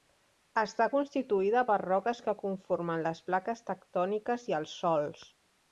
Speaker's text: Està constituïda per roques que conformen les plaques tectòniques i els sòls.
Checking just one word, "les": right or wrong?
right